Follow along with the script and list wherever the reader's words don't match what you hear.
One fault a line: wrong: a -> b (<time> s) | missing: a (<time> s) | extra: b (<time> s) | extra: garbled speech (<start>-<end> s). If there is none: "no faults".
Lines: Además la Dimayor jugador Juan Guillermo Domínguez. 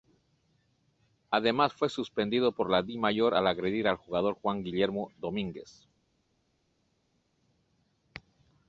extra: fue suspendido por (1.7 s)
extra: al agredir al (3.4 s)